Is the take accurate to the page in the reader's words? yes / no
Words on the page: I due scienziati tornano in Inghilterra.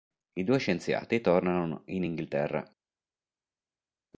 yes